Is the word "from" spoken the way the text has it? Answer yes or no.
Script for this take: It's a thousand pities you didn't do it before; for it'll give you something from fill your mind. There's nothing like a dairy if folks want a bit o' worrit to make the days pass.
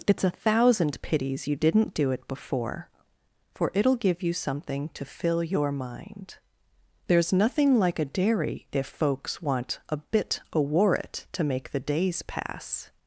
no